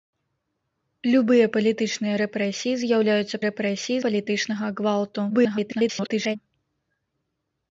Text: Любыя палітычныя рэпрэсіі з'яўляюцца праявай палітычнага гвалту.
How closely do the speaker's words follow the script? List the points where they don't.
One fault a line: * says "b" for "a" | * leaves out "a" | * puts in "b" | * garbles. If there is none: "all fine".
* says "рэпрэсіі" for "праявай"
* garbles